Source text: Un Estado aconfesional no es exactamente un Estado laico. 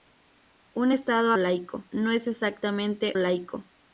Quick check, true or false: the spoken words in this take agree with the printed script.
false